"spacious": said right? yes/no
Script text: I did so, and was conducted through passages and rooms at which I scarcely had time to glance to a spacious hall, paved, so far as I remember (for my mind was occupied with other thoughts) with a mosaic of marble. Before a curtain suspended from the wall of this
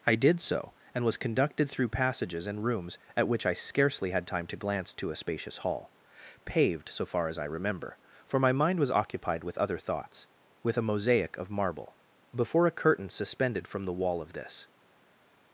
yes